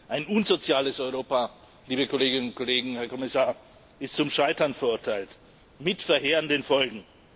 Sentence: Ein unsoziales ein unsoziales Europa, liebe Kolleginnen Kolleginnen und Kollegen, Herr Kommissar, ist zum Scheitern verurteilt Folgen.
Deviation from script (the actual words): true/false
true